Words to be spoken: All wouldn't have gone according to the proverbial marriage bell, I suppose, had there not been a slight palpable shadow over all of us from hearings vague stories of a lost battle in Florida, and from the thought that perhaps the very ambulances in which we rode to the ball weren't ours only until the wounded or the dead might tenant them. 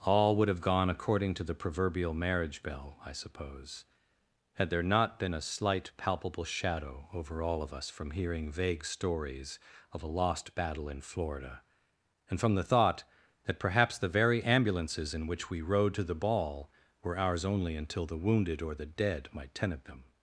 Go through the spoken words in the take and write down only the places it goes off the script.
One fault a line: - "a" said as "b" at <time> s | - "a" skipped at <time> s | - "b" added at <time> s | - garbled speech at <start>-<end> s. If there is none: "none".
- "wouldn't" said as "would" at 0.3 s
- "hearings" said as "hearing" at 8.1 s
- "weren't" said as "were" at 17.0 s